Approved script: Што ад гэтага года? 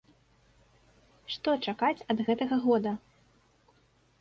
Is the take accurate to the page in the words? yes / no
no